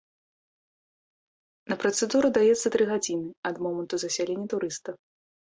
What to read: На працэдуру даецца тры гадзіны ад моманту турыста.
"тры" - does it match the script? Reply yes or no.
yes